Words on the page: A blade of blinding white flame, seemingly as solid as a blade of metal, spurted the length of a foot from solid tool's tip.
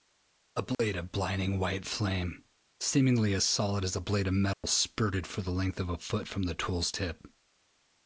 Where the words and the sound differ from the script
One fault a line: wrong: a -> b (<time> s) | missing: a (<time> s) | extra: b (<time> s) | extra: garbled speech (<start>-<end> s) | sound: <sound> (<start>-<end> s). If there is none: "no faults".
sound: dropout (0.7-0.8 s)
sound: dropout (4.5-4.6 s)
extra: for (5.3 s)
wrong: solid -> the (6.4 s)